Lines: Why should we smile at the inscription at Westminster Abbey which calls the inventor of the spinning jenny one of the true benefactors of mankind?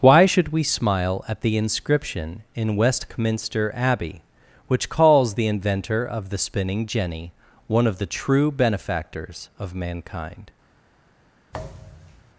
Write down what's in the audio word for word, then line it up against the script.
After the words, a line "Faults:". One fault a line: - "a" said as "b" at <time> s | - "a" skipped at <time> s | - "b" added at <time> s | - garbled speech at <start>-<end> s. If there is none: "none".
Why should we smile at the inscription in Westminster Abbey which calls the inventor of the spinning jenny one of the true benefactors of mankind?
Faults:
- "at" said as "in" at 2.6 s